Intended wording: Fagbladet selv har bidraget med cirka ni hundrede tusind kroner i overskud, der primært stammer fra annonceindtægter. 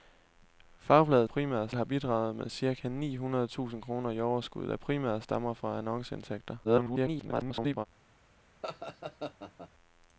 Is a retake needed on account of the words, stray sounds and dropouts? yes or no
yes